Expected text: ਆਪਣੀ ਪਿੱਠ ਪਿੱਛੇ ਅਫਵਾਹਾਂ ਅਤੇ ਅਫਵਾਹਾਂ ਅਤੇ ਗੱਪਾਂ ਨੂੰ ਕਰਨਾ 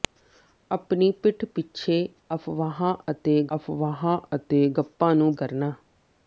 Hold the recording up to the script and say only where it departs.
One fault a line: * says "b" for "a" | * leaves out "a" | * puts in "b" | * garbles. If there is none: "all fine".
all fine